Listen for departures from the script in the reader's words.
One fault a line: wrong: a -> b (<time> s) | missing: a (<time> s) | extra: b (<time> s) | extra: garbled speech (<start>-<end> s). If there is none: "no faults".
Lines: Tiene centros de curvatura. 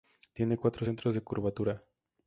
extra: cuatro (0.6 s)